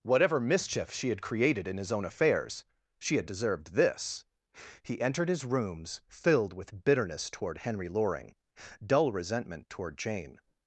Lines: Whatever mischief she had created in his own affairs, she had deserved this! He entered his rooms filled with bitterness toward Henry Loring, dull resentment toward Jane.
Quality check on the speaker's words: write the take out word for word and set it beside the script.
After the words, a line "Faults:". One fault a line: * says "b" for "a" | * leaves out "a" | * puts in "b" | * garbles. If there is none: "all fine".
Whatever mischief she had created in his own affairs, she had deserved this! He entered his rooms filled with bitterness toward Henry Loring, dull resentment toward Jane.
Faults:
all fine